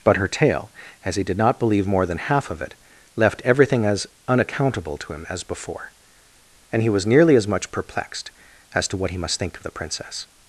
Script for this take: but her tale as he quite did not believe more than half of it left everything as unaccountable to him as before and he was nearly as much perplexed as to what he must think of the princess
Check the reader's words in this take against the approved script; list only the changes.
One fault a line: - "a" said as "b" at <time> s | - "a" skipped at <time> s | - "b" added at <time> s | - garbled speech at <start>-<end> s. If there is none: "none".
- "quite" skipped at 1.2 s